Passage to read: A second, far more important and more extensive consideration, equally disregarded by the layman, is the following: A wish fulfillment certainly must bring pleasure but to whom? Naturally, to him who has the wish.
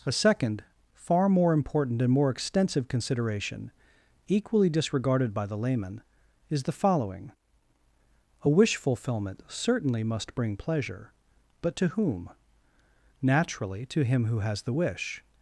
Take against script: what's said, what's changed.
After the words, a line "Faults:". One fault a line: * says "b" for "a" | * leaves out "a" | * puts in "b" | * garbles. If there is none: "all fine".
A second, far more important and more extensive consideration, equally disregarded by the layman, is the following: A wish fulfillment certainly must bring pleasure but to whom? Naturally, to him who has the wish.
Faults:
all fine